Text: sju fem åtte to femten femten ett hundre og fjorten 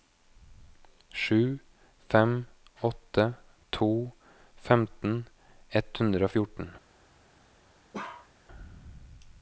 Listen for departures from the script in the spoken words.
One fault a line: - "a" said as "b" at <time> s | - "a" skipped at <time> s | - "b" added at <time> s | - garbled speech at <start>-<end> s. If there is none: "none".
- "femten" skipped at 5.2 s